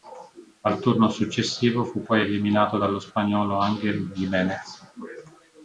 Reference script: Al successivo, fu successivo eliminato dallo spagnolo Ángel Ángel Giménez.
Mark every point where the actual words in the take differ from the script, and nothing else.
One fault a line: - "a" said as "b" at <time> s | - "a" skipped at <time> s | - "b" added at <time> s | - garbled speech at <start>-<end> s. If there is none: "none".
- "turno" added at 0.8 s
- "successivo" said as "poi" at 2.0 s
- "Ángel" skipped at 4.1 s